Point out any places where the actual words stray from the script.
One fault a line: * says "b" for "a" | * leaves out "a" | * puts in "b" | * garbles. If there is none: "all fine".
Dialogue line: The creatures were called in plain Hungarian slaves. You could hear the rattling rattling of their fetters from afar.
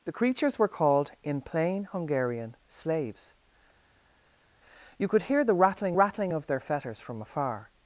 all fine